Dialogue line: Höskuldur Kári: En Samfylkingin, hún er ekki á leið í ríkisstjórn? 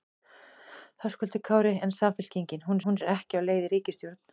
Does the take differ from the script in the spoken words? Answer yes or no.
yes